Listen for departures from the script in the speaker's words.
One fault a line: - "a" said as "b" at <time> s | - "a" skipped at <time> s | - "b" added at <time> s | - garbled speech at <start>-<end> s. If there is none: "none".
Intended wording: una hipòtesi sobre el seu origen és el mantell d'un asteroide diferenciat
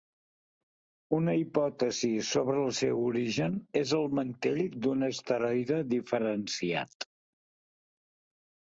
none